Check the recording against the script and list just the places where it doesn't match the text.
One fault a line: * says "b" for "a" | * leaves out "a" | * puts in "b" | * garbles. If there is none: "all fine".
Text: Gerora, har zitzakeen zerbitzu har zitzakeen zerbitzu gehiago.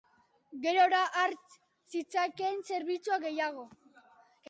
* leaves out "har zitzakeen zerbitzu"